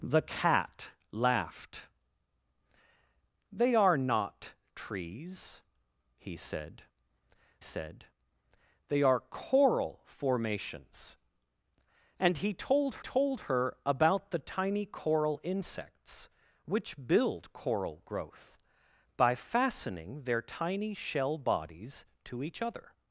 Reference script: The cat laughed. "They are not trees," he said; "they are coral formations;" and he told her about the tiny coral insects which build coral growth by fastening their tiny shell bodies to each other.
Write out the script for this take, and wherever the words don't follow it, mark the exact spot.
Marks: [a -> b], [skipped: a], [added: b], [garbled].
The cat laughed. "They are not trees," he said; [added: said] "they are coral formations;" and he told [added: told] her about the tiny coral insects which build coral growth by fastening their tiny shell bodies to each other.